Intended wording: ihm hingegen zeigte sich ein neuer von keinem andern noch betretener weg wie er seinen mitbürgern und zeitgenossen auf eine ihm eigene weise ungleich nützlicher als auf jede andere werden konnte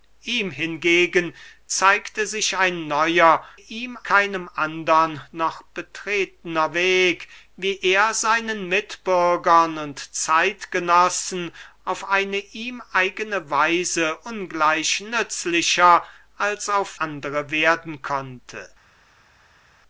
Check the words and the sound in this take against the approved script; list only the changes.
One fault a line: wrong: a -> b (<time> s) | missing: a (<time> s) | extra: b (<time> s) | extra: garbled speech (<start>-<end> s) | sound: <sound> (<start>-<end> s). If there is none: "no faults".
wrong: von -> ihm (3.6 s)
missing: jede (17.0 s)